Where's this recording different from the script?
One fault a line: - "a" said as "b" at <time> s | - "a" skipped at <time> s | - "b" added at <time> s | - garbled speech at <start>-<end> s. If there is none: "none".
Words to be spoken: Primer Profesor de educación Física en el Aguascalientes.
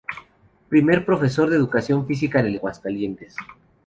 none